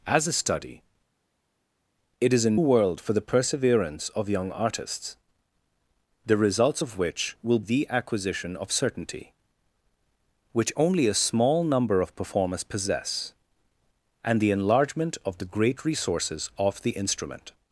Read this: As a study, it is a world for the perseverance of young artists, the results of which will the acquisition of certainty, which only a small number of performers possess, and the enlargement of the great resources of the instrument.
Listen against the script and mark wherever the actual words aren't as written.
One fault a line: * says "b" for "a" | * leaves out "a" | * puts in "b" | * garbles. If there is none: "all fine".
all fine